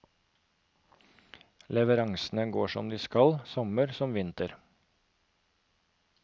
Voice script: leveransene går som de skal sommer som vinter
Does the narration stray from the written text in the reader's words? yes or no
no